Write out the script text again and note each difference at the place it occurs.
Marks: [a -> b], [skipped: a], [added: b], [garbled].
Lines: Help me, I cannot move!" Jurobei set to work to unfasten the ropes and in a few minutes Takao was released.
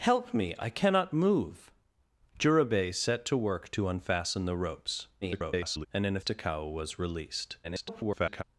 Help me, I cannot move!" Jurobei set to work to unfasten the ropes [garbled] and in a [skipped: few minutes] Takao was released. [garbled]